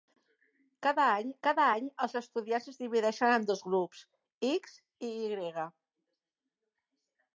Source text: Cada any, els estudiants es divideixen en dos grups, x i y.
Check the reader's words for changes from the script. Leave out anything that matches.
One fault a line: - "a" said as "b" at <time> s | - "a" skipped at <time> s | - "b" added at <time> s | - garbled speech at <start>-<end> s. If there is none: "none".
- "cada any" added at 1.5 s